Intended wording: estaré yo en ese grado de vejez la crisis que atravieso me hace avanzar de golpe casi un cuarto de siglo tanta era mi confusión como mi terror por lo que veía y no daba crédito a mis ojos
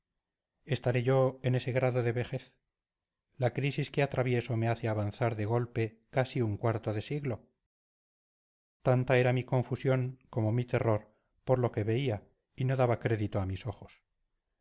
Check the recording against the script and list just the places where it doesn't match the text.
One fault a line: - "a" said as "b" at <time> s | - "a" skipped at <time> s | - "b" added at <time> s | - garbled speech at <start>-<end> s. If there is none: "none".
none